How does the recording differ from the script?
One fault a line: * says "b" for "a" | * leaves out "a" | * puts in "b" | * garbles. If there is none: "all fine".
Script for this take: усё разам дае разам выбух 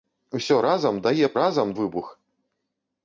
all fine